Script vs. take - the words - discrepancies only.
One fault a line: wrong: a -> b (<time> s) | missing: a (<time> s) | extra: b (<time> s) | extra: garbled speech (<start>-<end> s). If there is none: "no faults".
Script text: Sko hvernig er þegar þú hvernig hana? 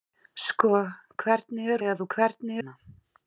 no faults